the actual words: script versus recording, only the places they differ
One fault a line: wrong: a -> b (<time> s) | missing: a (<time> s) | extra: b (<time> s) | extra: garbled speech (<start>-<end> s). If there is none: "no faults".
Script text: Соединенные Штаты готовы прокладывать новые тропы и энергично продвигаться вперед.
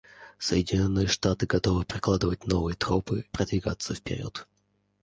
missing: и энергично (3.2 s)